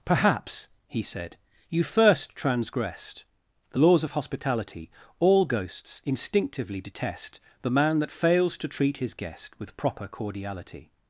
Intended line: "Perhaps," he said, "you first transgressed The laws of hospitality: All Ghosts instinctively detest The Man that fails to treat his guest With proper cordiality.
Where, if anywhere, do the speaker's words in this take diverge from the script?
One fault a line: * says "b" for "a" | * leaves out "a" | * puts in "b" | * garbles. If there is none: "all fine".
all fine